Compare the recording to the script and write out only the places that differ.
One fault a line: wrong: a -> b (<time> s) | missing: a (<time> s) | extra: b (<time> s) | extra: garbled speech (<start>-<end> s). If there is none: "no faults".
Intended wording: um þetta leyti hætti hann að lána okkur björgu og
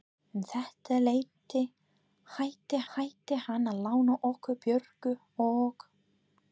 extra: hætti (3.0 s)